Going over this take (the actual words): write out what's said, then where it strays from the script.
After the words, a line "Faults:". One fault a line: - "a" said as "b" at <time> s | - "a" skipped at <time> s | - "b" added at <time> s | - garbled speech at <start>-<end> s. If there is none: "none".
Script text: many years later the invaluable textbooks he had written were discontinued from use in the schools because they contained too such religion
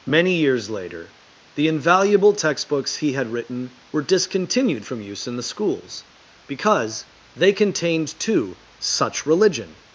many years later the invaluable textbooks he had written were discontinued from use in the schools because they contained too such religion
Faults:
none